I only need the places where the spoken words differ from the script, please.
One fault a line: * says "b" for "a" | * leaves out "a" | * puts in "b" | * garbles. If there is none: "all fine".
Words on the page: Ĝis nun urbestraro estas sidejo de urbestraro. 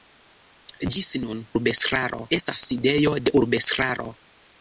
all fine